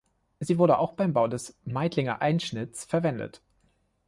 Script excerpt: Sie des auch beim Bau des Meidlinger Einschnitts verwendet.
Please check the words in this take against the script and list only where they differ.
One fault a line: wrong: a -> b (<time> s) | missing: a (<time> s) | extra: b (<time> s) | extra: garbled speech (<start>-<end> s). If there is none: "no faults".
wrong: des -> wurde (0.6 s)